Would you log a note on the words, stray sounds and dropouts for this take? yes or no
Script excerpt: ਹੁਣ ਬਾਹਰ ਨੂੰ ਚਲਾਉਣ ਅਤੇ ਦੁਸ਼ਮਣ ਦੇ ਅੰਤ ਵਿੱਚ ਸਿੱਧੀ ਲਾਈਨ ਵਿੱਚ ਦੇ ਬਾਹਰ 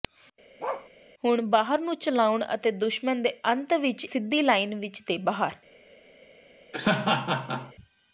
yes